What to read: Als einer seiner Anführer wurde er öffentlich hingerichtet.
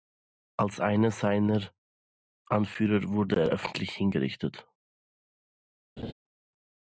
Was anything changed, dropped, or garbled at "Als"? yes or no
no